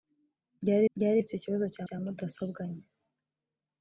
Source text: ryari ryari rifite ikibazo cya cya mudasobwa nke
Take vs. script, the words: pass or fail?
pass